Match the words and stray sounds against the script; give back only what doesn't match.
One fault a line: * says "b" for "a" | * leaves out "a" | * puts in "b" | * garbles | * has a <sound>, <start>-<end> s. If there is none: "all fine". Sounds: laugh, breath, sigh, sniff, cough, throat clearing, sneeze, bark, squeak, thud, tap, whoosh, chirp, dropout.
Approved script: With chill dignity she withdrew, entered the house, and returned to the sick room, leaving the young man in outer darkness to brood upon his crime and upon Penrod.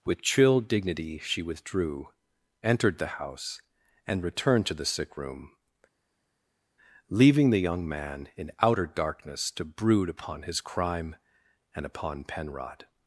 all fine